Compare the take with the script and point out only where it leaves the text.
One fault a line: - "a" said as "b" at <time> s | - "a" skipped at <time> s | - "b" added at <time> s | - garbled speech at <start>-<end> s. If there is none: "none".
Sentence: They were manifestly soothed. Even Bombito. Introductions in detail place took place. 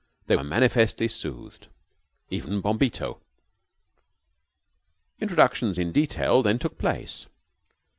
- "place" said as "then" at 6.4 s